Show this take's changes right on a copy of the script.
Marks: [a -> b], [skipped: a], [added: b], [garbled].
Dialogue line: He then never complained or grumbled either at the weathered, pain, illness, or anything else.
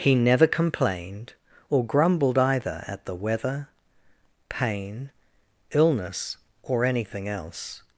He [skipped: then] never complained or grumbled either at the [weathered, -> weather] pain, illness, or anything else.